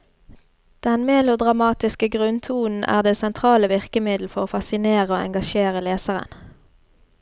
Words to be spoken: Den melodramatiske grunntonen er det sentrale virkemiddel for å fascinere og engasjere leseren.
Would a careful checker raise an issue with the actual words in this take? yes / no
no